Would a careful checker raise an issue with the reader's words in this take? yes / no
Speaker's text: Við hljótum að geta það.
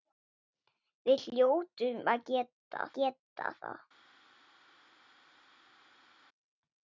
yes